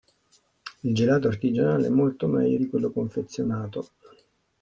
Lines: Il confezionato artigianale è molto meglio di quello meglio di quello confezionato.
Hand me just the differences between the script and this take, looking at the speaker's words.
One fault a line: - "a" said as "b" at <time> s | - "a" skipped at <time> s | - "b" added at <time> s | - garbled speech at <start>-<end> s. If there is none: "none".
- "confezionato" said as "gelato" at 0.9 s
- "meglio di quello" skipped at 2.9 s